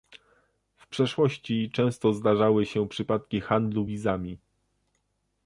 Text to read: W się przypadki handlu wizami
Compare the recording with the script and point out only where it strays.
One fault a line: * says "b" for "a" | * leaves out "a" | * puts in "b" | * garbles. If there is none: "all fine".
* puts in "przeszłości często zdarzały"